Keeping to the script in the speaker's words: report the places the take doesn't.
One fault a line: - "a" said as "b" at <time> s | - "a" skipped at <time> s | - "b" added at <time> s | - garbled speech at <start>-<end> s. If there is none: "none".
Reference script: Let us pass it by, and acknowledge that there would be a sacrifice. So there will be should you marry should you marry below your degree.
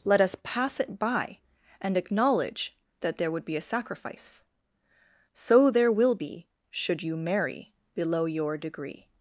- "should you marry" skipped at 7.7 s